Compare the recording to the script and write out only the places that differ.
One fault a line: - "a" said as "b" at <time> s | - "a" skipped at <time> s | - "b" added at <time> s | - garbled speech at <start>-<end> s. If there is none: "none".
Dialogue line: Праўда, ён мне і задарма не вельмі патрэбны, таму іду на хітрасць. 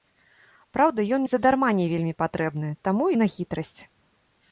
- "мне" skipped at 1.2 s
- "іду" skipped at 3.0 s